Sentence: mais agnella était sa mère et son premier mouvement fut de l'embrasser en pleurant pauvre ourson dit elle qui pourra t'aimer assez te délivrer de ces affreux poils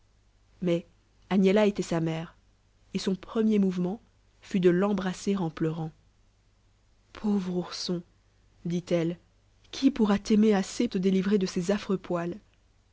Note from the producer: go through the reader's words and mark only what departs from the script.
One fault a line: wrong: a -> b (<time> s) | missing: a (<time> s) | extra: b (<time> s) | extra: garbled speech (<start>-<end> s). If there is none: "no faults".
no faults